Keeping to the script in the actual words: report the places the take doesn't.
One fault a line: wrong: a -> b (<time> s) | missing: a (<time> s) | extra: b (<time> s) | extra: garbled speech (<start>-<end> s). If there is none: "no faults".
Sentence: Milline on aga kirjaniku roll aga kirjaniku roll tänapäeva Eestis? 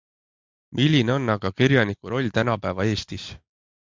missing: aga kirjaniku roll (2.3 s)